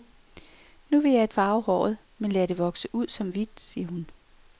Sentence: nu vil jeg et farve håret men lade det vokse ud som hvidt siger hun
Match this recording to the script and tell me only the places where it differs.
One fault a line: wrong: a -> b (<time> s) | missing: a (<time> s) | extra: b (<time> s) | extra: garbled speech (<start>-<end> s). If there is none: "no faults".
no faults